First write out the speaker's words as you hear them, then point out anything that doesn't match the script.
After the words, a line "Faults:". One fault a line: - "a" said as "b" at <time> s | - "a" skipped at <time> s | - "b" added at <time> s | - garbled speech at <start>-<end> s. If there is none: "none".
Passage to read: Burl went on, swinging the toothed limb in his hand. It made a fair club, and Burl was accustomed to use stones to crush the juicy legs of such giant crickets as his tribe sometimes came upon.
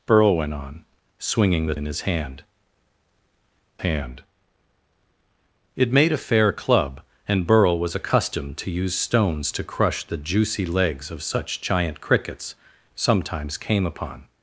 Burl went on, swinging the in his hand hand. It made a fair club, and Burl was accustomed to use stones to crush the juicy legs of such giant crickets sometimes came upon.
Faults:
- "toothed limb" skipped at 1.7 s
- "hand" added at 3.8 s
- "as his tribe" skipped at 12.5 s